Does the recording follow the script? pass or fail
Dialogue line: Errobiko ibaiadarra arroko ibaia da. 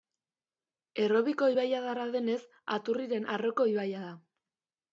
fail